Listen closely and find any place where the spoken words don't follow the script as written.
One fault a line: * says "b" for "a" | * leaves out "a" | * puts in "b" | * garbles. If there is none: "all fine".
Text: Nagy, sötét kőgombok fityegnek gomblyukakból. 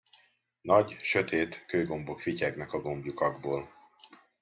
* puts in "a"